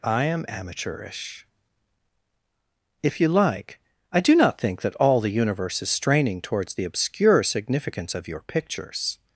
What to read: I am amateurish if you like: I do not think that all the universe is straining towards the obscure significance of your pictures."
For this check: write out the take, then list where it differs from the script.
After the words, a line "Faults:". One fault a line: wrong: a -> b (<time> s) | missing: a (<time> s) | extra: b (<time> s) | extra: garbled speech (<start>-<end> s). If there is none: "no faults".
I am amateurish if you like: I do not think that all the universe is straining towards the obscure significance of your pictures."
Faults:
no faults